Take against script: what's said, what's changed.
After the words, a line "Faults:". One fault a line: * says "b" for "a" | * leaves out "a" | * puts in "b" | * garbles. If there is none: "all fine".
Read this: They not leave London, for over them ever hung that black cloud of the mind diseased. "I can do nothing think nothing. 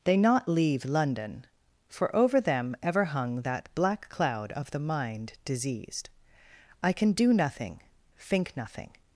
They not leave London, for over them ever hung that black cloud of the mind diseased. "I can do nothing think nothing.
Faults:
all fine